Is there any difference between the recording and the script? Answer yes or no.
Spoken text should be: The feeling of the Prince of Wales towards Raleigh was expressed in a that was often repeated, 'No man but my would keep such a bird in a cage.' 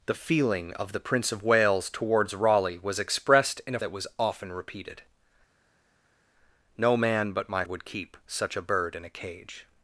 no